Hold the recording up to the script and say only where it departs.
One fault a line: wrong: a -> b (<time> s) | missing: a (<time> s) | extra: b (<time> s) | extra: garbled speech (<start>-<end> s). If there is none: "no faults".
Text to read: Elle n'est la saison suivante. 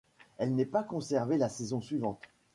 extra: pas conservée (0.7 s)